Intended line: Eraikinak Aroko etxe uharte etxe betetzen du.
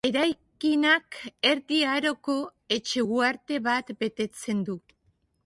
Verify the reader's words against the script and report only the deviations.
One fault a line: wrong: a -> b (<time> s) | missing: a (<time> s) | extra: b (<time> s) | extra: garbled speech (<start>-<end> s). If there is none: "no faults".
extra: Erdi (1.5 s)
wrong: etxe -> bat (3.6 s)